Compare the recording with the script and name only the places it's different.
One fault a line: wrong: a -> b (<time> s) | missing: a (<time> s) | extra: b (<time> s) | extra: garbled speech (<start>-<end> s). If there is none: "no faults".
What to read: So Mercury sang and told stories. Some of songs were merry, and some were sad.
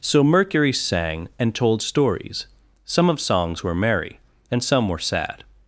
no faults